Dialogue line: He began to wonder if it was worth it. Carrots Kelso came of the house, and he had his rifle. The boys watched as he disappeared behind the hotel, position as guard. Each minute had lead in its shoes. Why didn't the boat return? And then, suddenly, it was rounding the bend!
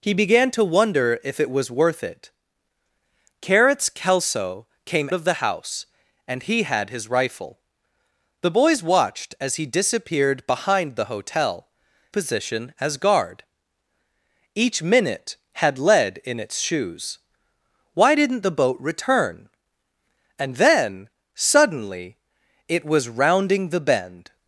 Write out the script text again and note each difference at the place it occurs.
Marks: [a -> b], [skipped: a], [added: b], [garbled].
He began to wonder if it was worth it. Carrots Kelso came of the house, and he had his rifle. The boys watched as he disappeared behind the hotel, position as guard. Each minute had lead in its shoes. Why didn't the boat return? And then, suddenly, it was rounding the bend!